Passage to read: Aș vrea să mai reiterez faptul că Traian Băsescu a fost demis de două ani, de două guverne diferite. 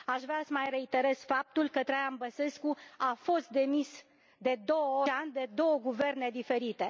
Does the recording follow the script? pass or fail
pass